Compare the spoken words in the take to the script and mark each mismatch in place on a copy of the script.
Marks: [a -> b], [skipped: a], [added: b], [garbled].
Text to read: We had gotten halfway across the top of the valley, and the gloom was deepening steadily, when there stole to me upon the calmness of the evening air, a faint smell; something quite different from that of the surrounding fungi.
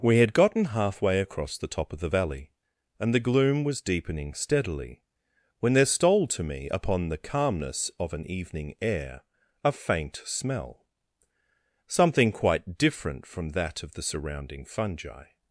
We had gotten halfway across the top of the valley, and the gloom was deepening steadily, when there stole to me upon the calmness of [the -> an] evening air, a faint smell; something quite different from that of the surrounding fungi.